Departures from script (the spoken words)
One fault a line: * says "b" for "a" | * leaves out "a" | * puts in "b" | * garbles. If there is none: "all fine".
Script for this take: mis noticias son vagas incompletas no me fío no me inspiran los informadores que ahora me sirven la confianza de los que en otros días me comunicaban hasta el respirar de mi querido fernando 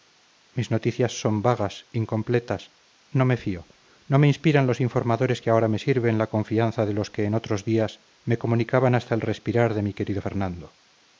all fine